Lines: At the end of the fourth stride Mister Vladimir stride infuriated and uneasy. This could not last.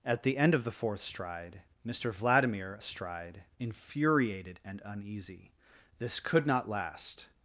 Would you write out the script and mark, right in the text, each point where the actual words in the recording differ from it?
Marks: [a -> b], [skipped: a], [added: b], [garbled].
At the end of the fourth stride Mister Vladimir stride infuriated and uneasy. This could not last.